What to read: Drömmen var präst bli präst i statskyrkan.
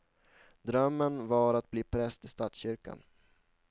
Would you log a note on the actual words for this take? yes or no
yes